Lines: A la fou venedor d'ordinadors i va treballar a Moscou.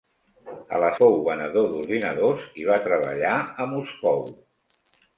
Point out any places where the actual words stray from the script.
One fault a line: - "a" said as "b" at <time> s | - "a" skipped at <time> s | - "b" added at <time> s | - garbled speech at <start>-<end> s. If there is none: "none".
none